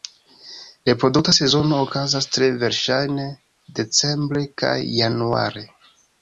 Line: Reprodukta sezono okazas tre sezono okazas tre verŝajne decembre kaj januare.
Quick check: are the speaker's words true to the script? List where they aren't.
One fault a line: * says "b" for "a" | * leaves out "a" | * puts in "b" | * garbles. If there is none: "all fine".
* leaves out "sezono okazas tre"